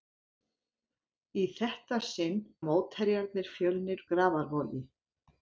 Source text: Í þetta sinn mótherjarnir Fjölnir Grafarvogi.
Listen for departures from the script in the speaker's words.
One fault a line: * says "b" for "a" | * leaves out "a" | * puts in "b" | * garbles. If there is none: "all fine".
all fine